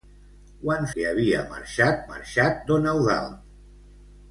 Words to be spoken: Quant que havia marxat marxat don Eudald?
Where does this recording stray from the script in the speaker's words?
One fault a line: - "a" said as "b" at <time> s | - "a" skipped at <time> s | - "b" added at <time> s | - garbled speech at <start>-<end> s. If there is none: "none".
none